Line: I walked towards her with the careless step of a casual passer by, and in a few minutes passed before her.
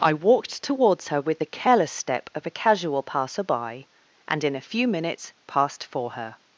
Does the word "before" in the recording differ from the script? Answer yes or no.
yes